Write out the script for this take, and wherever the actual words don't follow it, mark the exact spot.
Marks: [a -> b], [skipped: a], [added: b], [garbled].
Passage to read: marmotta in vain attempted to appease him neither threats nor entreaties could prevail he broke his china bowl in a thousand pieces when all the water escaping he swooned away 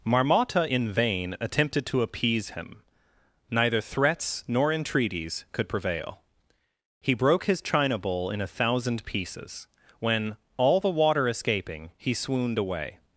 marmotta in vain attempted to appease him neither threats nor entreaties could prevail he broke his china bowl in a thousand pieces when all the water escaping he swooned away